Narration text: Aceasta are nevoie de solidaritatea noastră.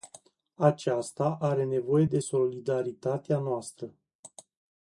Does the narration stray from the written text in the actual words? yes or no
no